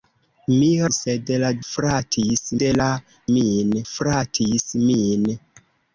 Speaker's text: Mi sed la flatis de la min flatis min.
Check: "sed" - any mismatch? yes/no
no